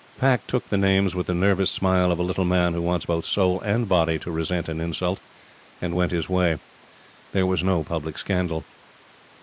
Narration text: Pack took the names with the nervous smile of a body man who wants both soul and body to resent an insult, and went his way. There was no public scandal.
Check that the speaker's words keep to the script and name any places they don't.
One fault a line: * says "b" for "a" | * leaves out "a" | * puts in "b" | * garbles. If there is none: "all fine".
* says "little" for "body"